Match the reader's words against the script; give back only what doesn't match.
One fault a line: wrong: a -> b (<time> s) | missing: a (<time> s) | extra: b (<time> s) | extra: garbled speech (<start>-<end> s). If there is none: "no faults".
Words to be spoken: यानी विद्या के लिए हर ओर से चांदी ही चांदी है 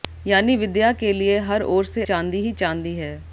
no faults